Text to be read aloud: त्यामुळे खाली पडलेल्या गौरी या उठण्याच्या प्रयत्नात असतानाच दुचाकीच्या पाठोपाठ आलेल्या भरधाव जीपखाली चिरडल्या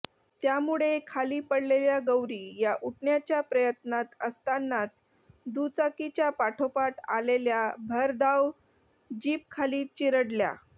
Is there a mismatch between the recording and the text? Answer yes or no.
no